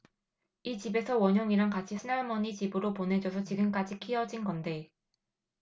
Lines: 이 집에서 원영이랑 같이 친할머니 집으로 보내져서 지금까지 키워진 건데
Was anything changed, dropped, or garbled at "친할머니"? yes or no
no